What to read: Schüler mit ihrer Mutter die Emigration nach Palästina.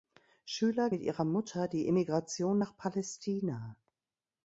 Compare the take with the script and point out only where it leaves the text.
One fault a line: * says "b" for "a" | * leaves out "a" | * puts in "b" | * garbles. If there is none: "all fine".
all fine